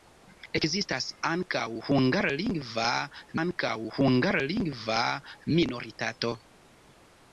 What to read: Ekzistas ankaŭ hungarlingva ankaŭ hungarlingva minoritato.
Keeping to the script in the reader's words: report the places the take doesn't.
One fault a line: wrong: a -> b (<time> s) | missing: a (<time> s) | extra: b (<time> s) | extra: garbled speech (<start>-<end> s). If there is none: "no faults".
no faults